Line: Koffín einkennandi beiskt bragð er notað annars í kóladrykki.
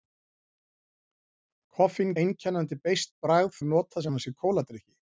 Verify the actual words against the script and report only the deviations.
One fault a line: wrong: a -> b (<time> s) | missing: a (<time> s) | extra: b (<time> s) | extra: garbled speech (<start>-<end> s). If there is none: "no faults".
no faults